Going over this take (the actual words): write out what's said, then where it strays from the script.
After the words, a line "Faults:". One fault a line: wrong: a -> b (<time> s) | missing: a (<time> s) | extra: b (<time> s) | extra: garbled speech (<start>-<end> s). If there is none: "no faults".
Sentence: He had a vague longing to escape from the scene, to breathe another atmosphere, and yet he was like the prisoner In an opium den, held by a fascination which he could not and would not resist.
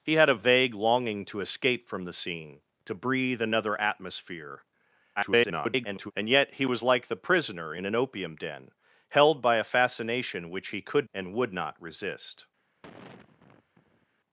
He had a vague longing to escape from the scene, to breathe another atmosphere, [garbled] and yet he was like the prisoner In an opium den, held by a fascination which he could and would not resist.
Faults:
extra: garbled speech (5.2-6.1 s)
missing: not (11.1 s)